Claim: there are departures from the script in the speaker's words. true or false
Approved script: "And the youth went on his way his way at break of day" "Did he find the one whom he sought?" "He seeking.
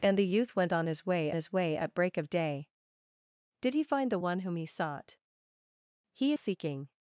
false